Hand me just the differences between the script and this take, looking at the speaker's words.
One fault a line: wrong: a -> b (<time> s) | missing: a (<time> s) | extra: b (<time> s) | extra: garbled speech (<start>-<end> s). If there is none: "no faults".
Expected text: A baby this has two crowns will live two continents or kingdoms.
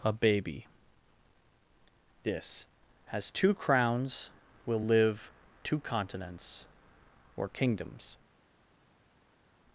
no faults